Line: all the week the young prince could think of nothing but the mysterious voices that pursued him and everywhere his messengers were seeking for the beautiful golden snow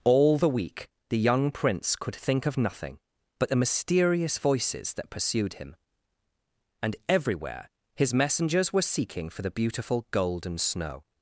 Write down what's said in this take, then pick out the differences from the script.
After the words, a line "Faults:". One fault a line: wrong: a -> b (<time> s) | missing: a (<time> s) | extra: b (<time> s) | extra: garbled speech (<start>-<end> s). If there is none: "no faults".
all the week the young prince could think of nothing but the mysterious voices that pursued him and everywhere his messengers were seeking for the beautiful golden snow
Faults:
no faults